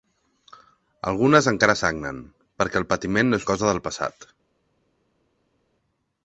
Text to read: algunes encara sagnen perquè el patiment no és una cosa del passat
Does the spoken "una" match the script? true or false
false